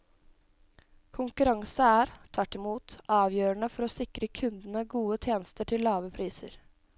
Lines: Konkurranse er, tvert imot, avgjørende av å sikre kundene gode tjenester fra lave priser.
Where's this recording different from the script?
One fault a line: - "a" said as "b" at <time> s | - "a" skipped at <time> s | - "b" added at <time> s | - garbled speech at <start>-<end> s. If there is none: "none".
- "av" said as "for" at 3.7 s
- "fra" said as "til" at 5.7 s